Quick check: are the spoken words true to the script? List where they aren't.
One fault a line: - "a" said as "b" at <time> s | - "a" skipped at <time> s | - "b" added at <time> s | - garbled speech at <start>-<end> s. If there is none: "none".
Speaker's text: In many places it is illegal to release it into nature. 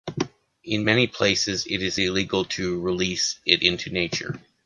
none